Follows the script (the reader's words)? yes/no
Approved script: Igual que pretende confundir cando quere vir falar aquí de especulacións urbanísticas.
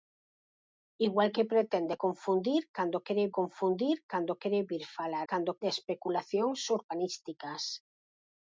no